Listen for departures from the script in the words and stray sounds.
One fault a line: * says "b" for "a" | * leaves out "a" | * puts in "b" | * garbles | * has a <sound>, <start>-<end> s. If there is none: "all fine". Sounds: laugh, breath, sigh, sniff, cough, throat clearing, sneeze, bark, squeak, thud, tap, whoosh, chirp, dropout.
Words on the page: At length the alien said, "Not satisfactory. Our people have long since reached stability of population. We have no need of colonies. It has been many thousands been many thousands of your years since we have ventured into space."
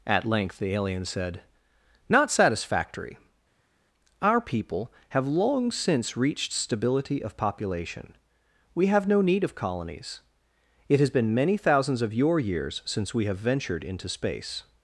* leaves out "been many thousands"